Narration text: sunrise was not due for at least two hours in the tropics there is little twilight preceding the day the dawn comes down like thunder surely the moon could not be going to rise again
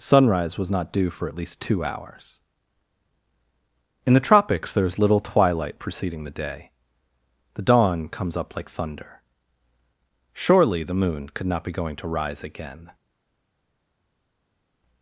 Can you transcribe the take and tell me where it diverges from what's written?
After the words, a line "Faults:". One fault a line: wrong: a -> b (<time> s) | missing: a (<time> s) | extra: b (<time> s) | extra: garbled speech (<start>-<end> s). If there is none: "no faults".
sunrise was not due for at least two hours in the tropics there is little twilight preceding the day the dawn comes up like thunder surely the moon could not be going to rise again
Faults:
wrong: down -> up (8.3 s)